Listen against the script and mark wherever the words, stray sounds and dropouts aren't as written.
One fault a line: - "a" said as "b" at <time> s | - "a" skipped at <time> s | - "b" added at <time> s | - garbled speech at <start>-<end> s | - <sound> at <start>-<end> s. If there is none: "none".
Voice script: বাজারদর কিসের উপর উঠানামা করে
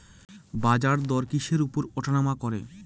none